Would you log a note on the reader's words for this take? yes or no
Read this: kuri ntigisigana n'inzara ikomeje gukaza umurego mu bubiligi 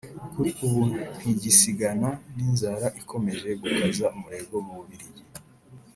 yes